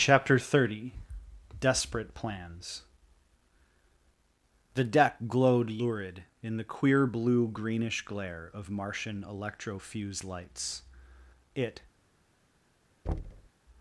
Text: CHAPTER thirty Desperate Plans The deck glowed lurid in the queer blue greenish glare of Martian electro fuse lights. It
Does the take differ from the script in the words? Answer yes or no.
no